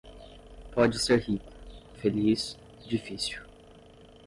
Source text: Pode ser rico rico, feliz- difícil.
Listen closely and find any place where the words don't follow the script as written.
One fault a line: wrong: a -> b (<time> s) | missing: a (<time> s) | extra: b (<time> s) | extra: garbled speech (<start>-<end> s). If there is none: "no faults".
missing: rico (1.5 s)